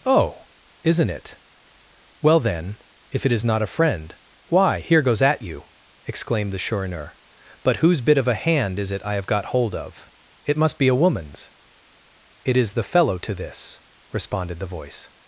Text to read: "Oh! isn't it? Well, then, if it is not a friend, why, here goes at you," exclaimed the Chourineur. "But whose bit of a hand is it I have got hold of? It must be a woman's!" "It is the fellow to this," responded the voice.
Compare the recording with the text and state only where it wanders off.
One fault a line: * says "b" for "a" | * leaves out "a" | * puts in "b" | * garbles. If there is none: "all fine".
all fine